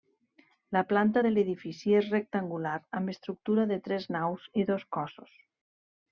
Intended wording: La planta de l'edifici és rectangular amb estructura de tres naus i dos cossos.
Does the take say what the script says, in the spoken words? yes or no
yes